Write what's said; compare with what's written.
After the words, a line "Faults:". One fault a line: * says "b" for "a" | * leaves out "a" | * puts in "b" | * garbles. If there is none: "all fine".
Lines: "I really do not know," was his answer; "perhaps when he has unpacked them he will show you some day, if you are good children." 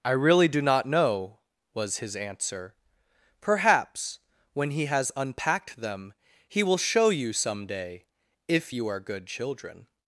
"I really do not know," was his answer; "perhaps when he has unpacked them he will show you some day, if you are good children."
Faults:
all fine